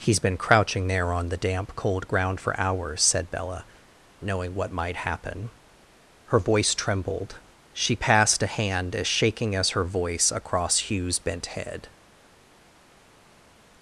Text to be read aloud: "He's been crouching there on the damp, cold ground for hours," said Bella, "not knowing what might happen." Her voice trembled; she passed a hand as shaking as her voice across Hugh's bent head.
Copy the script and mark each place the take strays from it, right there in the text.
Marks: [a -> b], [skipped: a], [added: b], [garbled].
"He's been crouching there on the damp, cold ground for hours," said Bella, [skipped: "not] knowing what might happen." Her voice trembled; she passed a hand as shaking as her voice across Hugh's bent head.